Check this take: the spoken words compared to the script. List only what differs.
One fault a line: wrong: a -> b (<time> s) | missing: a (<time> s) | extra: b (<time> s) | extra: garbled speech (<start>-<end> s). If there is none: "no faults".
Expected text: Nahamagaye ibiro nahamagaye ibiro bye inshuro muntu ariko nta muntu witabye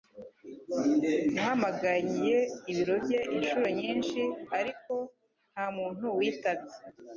missing: nahamagaye ibiro (3.0 s)
wrong: muntu -> nyinshi (3.8 s)